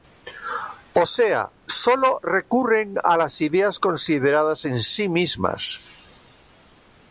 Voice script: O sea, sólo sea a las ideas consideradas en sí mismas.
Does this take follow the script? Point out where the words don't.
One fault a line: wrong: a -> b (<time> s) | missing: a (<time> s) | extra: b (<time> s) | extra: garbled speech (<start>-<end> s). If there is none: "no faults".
wrong: sea -> recurren (2.2 s)